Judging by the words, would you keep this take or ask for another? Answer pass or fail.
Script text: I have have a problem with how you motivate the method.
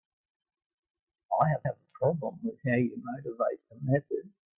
pass